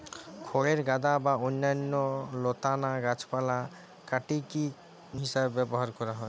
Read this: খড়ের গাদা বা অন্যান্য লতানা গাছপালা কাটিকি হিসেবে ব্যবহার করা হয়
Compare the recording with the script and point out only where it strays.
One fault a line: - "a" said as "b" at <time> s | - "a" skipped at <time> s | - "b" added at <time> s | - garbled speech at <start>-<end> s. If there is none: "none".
none